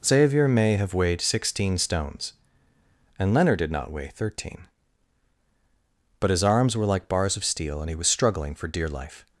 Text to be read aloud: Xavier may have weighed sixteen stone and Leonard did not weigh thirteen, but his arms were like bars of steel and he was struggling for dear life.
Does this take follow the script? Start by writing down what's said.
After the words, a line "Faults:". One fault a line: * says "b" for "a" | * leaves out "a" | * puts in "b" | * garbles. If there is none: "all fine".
Xavier may have weighed sixteen stones and Leonard did not weigh thirteen, but his arms were like bars of steel and he was struggling for dear life.
Faults:
* says "stones" for "stone"